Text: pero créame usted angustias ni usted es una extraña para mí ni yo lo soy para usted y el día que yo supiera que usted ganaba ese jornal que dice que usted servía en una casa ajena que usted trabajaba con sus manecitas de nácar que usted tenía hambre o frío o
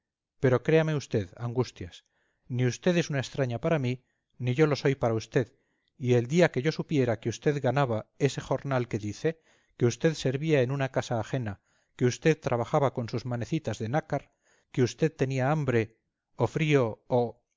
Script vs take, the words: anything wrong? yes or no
no